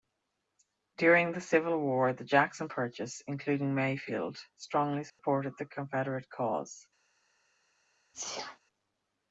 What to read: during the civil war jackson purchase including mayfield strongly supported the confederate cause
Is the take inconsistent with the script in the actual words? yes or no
yes